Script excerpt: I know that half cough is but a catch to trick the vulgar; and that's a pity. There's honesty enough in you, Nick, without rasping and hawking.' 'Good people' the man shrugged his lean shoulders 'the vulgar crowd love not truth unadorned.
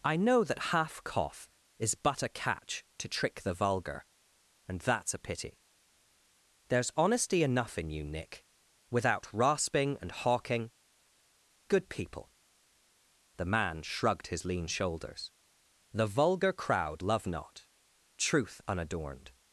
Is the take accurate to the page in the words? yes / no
yes